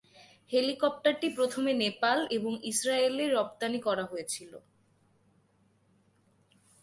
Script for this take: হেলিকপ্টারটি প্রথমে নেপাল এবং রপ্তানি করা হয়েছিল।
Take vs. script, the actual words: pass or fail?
fail